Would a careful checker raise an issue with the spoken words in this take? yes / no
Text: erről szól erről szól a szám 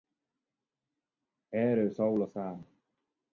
yes